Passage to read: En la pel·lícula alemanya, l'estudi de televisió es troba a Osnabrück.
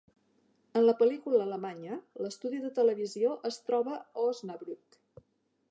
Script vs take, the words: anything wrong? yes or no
no